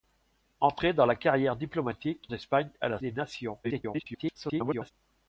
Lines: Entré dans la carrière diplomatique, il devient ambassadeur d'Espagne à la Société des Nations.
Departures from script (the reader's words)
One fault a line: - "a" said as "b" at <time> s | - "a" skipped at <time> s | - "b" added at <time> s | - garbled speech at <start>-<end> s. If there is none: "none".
- "il devient ambassadeur" skipped at 2.3 s
- "Société" skipped at 3.0 s
- garbled speech at 3.6-4.9 s